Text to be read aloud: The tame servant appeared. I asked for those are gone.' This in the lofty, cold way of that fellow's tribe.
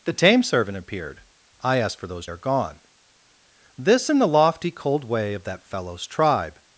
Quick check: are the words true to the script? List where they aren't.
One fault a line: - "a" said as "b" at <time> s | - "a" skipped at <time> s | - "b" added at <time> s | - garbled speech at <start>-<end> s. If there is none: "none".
none